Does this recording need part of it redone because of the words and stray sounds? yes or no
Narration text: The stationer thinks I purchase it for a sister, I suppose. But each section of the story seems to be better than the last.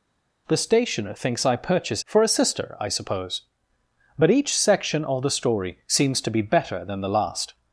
yes